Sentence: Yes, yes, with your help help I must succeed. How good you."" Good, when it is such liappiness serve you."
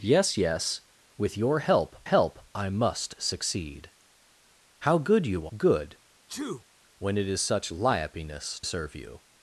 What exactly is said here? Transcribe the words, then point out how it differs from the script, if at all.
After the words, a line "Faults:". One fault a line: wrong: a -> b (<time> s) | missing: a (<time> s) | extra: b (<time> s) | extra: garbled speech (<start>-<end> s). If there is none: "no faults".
Yes, yes, with your help help I must succeed. How good you."" Good, when it is such liappiness serve you."
Faults:
no faults